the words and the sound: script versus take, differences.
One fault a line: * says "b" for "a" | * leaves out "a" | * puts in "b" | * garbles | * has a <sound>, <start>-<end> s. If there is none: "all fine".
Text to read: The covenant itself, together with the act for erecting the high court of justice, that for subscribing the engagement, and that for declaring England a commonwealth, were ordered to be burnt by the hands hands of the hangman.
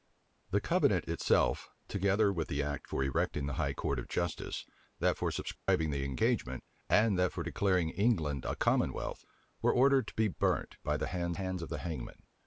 * has a dropout, 5.6-5.7 s